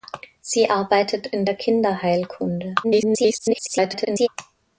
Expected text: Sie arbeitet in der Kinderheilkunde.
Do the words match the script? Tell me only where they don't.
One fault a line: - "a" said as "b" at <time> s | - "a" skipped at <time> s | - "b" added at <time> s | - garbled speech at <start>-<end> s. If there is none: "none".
- garbled speech at 2.8-4.3 s